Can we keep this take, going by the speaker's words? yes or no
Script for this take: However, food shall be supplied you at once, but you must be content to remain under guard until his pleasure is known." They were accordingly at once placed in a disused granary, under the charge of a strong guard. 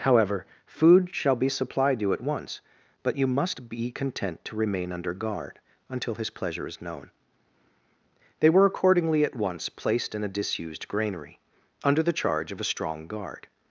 yes